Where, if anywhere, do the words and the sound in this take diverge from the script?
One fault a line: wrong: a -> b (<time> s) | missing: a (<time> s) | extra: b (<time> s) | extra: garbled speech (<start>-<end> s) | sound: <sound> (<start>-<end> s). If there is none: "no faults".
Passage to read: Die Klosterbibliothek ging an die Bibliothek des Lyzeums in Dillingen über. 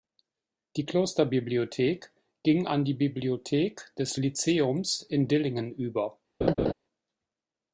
sound: laugh (6.4-6.7 s)